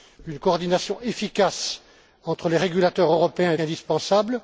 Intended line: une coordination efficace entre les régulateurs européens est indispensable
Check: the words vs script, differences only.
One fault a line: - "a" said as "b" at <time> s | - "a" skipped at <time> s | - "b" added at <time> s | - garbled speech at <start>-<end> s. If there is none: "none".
none